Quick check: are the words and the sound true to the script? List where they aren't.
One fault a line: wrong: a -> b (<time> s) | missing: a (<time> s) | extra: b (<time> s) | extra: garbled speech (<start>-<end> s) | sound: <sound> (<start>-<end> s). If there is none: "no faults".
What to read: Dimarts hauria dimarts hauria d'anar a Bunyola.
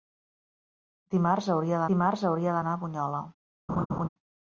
sound: laugh (3.7-4.1 s)